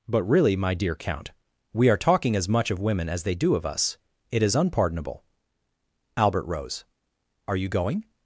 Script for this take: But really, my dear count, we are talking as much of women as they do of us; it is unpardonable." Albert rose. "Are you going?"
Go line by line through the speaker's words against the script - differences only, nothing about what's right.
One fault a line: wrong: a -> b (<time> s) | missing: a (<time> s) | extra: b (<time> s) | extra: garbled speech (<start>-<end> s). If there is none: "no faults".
no faults